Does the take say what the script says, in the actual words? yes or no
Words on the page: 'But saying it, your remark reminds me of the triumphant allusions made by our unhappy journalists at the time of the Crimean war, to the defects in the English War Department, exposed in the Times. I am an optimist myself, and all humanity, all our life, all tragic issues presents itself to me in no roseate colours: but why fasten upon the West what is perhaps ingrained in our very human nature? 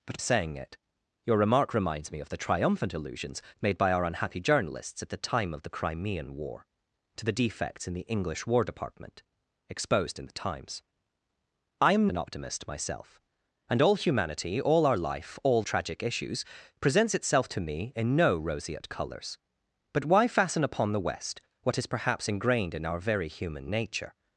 yes